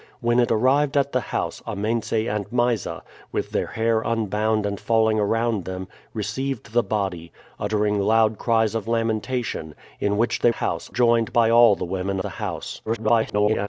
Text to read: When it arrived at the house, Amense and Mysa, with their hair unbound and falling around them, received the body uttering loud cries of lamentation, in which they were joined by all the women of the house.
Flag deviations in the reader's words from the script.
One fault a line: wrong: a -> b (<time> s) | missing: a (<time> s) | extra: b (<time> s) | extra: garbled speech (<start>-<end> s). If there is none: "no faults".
wrong: were -> house (10.5 s)
missing: of (12.2 s)
extra: garbled speech (12.9-13.7 s)